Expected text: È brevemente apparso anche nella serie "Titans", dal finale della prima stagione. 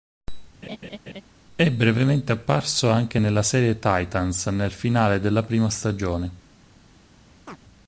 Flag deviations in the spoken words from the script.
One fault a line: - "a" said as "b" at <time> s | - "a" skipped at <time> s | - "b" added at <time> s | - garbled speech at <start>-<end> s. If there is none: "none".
- "dal" said as "nel" at 4.5 s